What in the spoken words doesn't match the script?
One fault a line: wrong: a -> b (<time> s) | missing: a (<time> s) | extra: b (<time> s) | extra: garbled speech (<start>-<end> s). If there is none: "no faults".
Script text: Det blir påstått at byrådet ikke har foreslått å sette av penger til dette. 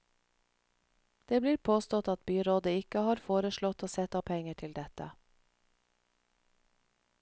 no faults